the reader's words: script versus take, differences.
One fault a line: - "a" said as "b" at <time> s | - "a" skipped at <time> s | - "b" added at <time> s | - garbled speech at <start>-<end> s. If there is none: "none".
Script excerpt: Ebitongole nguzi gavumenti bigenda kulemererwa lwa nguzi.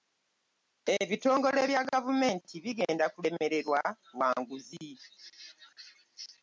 - "nguzi" said as "bya" at 1.7 s